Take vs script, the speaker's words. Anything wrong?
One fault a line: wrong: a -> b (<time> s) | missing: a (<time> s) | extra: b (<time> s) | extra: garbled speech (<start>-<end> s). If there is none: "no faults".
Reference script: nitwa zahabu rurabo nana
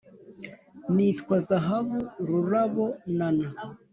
no faults